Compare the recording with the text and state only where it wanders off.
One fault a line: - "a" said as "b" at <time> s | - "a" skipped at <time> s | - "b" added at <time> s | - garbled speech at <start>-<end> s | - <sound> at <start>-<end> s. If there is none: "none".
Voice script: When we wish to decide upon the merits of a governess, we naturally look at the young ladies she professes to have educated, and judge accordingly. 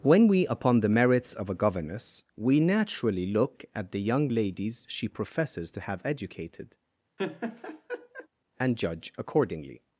- "wish to decide" skipped at 0.5 s
- laugh at 7.2-8.3 s